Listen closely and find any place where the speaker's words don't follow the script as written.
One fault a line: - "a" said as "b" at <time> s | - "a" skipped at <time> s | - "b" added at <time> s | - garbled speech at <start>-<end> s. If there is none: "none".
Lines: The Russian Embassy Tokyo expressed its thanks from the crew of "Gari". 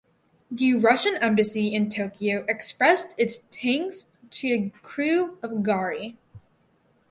- "in" added at 1.8 s
- "from" said as "to" at 4.3 s